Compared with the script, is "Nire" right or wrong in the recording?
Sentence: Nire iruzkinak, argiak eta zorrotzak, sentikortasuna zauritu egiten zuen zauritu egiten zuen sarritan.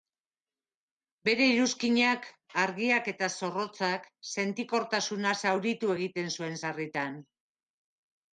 wrong